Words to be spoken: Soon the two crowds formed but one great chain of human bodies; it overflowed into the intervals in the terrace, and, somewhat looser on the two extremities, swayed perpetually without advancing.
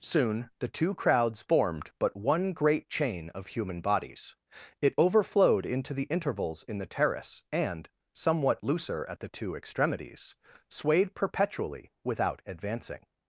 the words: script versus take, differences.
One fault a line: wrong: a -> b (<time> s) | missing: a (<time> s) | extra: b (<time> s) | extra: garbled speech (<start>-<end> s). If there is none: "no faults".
wrong: on -> at (9.1 s)